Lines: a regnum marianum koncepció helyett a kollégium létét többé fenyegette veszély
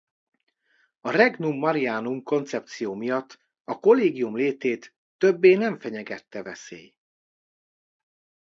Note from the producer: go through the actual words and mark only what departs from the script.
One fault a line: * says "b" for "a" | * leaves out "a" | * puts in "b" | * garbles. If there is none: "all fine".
* says "miatt" for "helyett"
* puts in "nem"